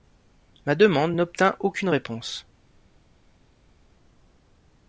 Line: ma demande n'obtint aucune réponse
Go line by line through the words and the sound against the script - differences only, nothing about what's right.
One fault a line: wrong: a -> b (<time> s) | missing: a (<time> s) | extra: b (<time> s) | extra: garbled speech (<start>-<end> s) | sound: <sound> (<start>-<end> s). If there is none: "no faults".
no faults